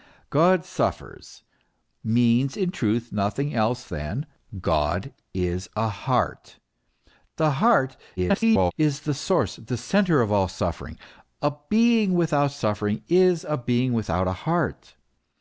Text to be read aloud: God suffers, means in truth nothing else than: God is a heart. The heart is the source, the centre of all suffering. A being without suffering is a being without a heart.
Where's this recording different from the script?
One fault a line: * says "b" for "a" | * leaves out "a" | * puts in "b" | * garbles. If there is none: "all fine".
* garbles